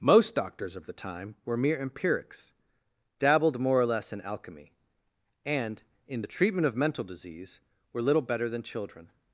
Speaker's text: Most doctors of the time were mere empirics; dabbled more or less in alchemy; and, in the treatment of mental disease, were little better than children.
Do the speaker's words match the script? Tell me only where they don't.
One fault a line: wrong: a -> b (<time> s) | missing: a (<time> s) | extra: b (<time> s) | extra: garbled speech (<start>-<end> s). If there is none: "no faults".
no faults